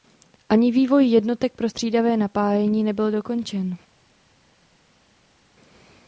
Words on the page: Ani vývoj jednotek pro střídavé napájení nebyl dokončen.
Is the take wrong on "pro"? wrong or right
right